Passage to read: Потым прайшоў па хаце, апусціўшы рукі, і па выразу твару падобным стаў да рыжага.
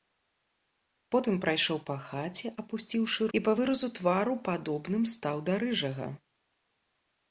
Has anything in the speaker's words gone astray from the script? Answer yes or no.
yes